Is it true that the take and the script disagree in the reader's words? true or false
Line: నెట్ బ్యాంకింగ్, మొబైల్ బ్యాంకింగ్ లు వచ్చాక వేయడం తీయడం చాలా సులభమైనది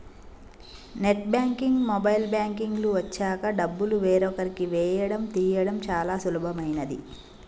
true